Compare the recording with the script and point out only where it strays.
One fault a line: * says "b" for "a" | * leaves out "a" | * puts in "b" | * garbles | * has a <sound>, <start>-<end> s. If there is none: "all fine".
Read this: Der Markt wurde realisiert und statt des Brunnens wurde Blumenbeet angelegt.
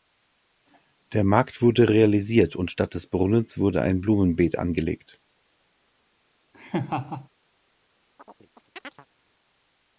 * puts in "ein"
* has a laugh, 6.5-7.3 s
* has a chirp, 8.2-9.1 s